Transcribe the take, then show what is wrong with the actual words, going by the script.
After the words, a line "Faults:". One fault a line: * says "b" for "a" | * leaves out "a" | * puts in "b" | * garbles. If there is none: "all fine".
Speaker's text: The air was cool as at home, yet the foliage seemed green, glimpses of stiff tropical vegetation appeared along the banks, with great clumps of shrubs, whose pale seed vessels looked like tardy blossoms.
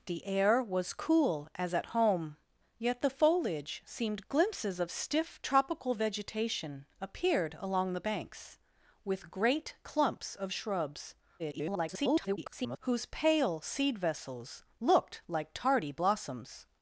The air was cool as at home, yet the foliage seemed glimpses of stiff tropical vegetation appeared along the banks, with great clumps of shrubs, [garbled] whose pale seed vessels looked like tardy blossoms.
Faults:
* leaves out "green"
* garbles